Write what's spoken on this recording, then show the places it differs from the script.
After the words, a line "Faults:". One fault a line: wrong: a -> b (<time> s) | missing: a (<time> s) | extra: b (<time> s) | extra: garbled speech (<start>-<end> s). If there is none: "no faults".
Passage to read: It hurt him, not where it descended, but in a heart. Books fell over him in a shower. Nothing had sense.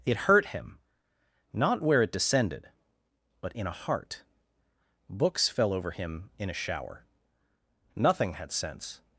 It hurt him, not where it descended, but in a heart. Books fell over him in a shower. Nothing had sense.
Faults:
no faults